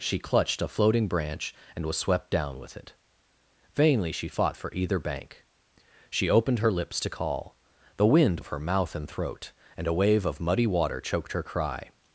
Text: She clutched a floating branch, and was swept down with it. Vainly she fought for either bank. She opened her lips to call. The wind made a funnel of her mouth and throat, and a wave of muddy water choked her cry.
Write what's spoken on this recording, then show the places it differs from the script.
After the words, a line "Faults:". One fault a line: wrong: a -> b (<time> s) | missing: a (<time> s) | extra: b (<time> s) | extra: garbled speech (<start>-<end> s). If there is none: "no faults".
She clutched a floating branch, and was swept down with it. Vainly she fought for either bank. She opened her lips to call. The wind of her mouth and throat, and a wave of muddy water choked her cry.
Faults:
missing: made a funnel (8.4 s)